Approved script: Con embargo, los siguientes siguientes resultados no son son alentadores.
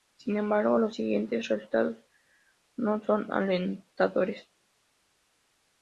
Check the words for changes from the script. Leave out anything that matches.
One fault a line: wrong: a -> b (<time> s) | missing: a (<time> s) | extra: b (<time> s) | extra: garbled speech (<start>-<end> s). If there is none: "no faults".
wrong: Con -> Sin (0.2 s)
missing: siguientes (1.5 s)
missing: son (3.3 s)